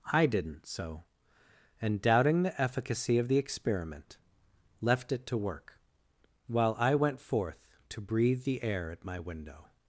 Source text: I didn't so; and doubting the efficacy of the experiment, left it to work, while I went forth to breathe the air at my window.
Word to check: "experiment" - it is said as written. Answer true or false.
true